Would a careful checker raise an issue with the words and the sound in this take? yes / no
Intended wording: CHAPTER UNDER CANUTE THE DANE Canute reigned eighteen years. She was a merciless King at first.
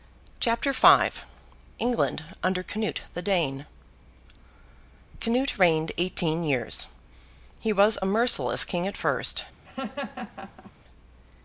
yes